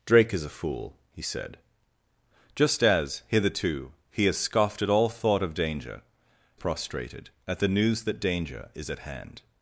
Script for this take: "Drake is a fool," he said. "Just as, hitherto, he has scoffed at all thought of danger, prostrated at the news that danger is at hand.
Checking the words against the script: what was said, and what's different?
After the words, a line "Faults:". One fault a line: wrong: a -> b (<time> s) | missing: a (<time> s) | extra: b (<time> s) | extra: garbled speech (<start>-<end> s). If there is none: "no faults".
"Drake is a fool," he said. "Just as, hitherto, he has scoffed at all thought of danger, prostrated at the news that danger is at hand.
Faults:
no faults